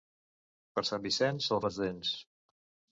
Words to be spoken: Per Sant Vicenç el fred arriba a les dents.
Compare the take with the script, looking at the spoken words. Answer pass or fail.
fail